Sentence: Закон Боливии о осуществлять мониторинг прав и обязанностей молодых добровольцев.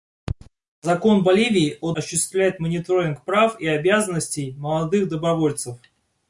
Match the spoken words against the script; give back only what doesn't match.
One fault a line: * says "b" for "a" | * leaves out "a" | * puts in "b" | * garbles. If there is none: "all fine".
all fine